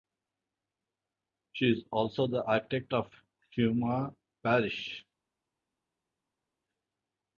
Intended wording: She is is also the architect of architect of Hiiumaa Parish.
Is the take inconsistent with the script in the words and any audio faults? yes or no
yes